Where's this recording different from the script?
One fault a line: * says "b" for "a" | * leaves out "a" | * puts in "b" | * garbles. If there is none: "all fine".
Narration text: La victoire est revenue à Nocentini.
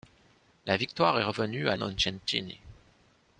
all fine